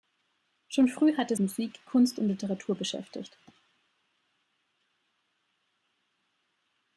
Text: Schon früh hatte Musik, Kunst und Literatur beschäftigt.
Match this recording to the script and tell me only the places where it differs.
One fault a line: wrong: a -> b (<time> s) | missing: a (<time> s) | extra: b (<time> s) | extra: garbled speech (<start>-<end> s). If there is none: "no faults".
no faults